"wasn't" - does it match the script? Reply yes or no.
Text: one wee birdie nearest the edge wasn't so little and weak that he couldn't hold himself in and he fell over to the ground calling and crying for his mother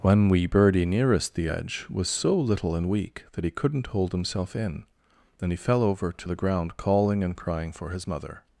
no